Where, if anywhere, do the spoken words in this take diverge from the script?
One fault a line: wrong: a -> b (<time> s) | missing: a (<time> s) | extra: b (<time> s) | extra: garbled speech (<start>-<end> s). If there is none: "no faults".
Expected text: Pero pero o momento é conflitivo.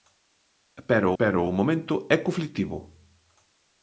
no faults